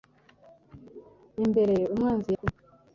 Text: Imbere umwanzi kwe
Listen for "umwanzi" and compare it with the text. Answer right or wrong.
right